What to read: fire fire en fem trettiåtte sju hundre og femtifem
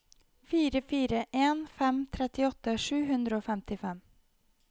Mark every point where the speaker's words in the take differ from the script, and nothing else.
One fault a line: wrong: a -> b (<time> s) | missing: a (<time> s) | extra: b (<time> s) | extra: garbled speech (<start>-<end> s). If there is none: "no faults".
no faults